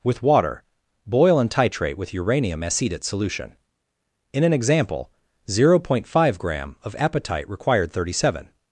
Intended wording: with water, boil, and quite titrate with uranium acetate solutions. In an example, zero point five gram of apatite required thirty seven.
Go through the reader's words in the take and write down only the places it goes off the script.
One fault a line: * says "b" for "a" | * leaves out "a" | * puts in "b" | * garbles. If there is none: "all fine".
* leaves out "quite"
* says "solution" for "solutions"